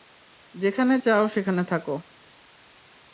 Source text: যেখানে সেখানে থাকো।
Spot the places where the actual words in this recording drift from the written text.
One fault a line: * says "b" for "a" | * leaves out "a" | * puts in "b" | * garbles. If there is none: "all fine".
* puts in "চাও"